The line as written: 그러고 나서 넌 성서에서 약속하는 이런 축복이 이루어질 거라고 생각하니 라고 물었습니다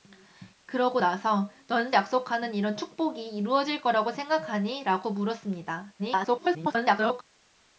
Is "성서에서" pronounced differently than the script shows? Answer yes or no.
yes